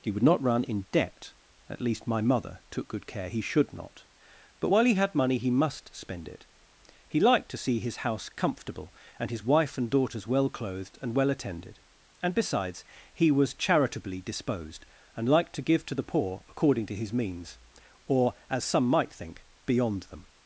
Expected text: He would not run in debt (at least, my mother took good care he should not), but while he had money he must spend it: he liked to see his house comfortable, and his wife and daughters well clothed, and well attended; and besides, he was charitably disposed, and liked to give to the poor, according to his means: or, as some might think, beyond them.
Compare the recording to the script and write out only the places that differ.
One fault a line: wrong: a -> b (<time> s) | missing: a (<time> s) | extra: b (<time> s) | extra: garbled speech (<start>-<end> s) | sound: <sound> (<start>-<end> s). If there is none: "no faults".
no faults